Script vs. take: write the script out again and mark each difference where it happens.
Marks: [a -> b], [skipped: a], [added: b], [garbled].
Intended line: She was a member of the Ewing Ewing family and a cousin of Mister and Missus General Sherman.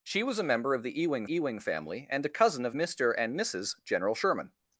She was a member of the Ewing Ewing family and a cousin of Mister and Missus General Sherman.